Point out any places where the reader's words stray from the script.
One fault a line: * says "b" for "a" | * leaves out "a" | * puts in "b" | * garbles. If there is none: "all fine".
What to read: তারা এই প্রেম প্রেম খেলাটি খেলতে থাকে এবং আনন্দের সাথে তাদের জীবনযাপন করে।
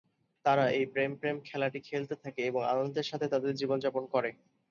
all fine